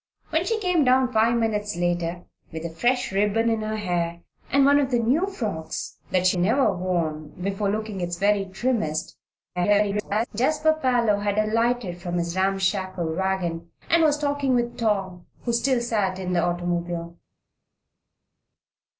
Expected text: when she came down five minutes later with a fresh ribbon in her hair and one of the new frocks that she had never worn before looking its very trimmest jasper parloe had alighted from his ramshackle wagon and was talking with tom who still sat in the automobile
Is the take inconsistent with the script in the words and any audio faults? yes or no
yes